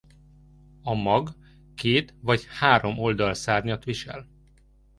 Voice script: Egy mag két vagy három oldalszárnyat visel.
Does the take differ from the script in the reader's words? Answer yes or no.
yes